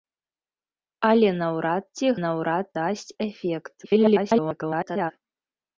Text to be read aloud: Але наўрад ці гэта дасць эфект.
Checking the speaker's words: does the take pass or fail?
fail